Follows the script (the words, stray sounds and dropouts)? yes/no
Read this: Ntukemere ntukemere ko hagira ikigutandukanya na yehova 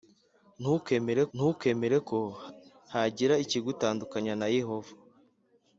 yes